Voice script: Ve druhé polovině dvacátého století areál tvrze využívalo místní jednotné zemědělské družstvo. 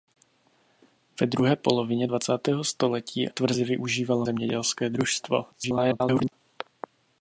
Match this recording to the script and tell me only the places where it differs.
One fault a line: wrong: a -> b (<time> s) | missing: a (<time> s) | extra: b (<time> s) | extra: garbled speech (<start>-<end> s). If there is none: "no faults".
missing: areál (3.3 s)
missing: místní jednotné (4.3 s)
extra: garbled speech (5.5-6.3 s)